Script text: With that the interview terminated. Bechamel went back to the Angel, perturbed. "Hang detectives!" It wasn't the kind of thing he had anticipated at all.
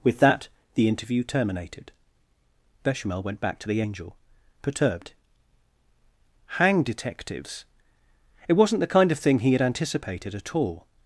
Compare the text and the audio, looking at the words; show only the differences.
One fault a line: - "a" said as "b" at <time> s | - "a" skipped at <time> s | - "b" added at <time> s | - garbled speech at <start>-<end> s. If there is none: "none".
none